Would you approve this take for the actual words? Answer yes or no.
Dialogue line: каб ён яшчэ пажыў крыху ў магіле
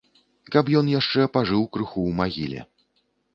yes